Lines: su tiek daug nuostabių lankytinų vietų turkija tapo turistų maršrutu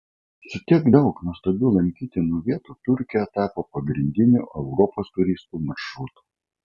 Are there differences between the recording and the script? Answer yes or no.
yes